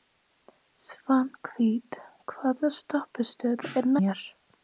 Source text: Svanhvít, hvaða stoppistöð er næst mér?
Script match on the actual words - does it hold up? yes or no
no